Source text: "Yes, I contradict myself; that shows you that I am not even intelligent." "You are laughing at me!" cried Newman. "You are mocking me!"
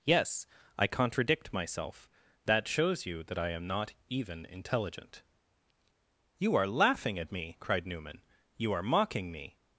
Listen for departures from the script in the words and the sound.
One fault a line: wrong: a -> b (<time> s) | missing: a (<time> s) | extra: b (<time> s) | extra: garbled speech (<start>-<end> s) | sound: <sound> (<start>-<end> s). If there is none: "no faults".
no faults